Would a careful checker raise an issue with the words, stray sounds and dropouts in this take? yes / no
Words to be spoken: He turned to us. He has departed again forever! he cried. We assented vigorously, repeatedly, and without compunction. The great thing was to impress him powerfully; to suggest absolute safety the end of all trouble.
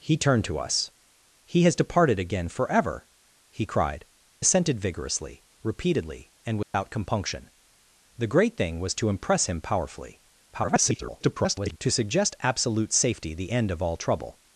yes